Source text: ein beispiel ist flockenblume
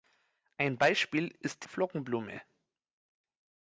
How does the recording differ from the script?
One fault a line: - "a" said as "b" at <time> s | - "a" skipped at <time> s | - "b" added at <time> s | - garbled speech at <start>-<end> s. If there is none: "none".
none